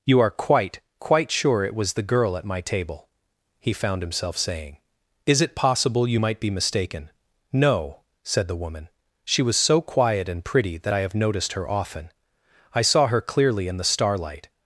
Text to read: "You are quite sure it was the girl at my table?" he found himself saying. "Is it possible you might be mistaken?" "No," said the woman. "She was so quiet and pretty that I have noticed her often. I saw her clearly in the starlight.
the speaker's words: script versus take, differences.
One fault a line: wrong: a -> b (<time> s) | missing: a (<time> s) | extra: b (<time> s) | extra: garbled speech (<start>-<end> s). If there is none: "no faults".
extra: quite (1.0 s)